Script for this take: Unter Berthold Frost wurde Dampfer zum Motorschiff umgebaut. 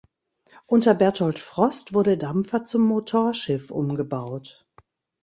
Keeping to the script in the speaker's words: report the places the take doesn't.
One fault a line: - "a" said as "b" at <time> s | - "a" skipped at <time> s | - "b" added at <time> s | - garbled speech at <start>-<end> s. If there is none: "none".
none